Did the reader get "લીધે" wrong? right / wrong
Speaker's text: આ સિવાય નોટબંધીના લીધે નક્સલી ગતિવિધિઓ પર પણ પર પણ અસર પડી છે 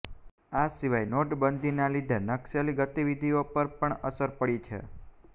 right